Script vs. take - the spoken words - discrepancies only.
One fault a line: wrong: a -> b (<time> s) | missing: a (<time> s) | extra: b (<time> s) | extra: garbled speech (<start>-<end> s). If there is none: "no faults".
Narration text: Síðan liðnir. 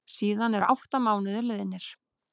extra: eru átta mánuðir (0.6 s)